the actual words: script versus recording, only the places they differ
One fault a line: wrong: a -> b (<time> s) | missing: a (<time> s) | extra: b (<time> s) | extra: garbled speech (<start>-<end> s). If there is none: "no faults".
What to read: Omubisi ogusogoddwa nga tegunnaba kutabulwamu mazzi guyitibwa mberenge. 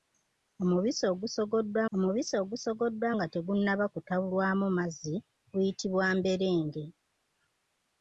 extra: omubisi ogusogoddwa (1.9 s)